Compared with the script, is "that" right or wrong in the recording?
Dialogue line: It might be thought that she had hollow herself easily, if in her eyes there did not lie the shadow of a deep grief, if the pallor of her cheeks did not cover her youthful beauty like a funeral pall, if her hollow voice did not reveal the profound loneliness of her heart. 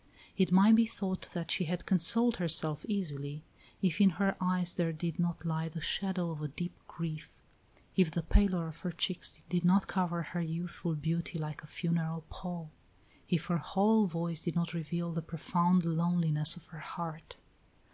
right